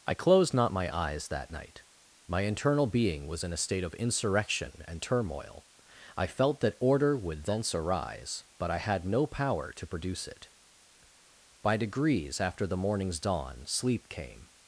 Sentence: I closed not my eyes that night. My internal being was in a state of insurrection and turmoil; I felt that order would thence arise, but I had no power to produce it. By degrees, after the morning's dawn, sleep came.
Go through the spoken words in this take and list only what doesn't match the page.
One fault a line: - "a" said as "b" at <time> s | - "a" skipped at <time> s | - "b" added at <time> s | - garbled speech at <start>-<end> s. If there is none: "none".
none